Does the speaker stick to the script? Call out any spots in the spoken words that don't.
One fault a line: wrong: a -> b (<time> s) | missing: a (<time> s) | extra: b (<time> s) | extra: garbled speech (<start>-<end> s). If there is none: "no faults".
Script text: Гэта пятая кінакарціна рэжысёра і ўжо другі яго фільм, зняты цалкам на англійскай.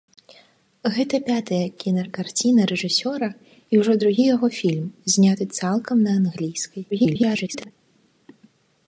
extra: garbled speech (6.9-7.7 s)